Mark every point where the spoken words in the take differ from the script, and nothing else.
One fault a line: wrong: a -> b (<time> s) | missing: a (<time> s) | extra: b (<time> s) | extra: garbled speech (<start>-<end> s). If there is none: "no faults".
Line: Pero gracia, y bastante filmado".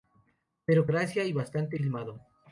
no faults